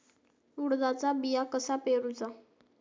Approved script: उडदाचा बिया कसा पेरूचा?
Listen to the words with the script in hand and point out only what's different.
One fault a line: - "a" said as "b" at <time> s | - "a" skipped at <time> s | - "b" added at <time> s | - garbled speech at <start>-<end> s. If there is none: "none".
none